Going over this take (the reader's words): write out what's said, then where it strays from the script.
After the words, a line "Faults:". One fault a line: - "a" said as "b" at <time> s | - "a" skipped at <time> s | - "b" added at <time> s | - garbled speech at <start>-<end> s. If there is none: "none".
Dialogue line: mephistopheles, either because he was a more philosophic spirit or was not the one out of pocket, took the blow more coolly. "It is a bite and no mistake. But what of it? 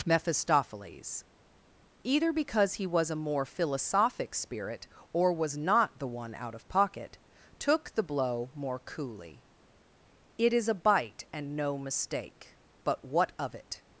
mephistopheles, either because he was a more philosophic spirit or was not the one out of pocket, took the blow more coolly. "It is a bite and no mistake. But what of it?
Faults:
none